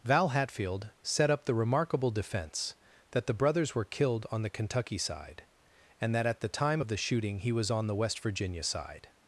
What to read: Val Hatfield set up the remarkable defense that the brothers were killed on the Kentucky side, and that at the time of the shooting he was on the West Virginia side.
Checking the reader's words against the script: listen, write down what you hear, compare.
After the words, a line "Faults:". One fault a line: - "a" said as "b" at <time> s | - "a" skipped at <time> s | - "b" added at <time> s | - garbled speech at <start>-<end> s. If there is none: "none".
Val Hatfield set up the remarkable defense that the brothers were killed on the Kentucky side, and that at the time of the shooting he was on the West Virginia side.
Faults:
none